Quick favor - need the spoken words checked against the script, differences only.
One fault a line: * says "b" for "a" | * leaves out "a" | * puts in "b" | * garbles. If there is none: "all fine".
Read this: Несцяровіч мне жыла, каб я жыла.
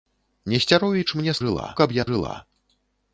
all fine